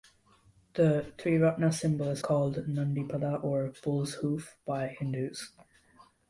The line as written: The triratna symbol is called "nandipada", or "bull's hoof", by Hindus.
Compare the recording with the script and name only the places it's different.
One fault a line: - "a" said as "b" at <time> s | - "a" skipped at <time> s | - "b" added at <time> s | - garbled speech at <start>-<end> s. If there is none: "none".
none